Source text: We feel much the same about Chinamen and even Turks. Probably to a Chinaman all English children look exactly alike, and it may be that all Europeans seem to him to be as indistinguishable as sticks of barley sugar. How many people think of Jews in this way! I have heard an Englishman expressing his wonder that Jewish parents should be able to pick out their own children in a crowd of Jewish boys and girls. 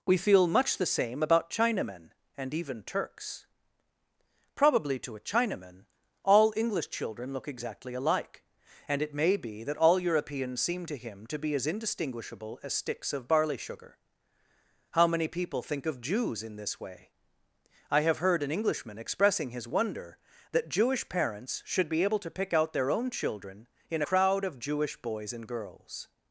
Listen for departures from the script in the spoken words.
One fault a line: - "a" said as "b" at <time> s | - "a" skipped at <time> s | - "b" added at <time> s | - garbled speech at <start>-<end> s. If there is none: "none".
- "a" skipped at 24.0 s